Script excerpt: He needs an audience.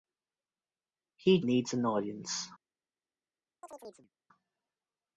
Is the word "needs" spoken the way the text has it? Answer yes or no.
yes